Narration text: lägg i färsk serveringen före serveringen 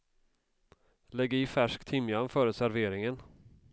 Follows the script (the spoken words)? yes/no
no